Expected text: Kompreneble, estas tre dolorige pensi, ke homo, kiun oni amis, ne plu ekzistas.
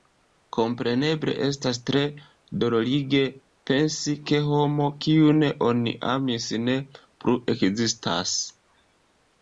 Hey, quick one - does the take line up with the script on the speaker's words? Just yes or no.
yes